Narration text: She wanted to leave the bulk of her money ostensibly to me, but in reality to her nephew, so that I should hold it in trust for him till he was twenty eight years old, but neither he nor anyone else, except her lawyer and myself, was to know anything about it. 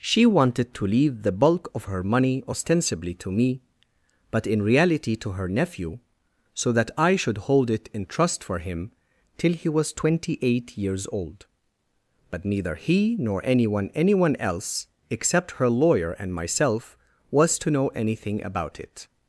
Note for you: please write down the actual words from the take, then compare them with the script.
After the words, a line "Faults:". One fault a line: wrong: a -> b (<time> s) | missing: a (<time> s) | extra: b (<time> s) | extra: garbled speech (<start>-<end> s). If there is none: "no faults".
She wanted to leave the bulk of her money ostensibly to me, but in reality to her nephew, so that I should hold it in trust for him till he was twenty eight years old, but neither he nor anyone anyone else, except her lawyer and myself, was to know anything about it.
Faults:
extra: anyone (13.9 s)